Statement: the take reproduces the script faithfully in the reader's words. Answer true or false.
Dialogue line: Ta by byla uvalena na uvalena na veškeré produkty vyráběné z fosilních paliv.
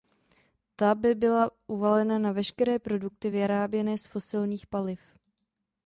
false